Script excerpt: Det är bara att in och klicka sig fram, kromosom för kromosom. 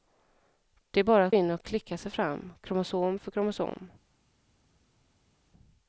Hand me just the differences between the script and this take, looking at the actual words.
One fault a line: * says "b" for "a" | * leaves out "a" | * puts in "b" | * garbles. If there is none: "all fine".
all fine